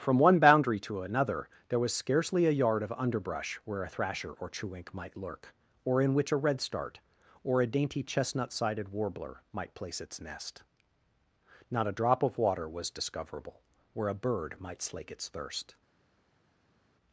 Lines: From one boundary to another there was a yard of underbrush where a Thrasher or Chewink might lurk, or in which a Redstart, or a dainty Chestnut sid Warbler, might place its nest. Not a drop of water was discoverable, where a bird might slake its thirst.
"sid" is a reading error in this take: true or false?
true